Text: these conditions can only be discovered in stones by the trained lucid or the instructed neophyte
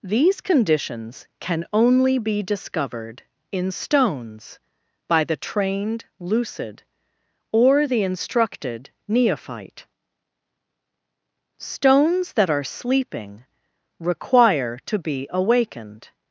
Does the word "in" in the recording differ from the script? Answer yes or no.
no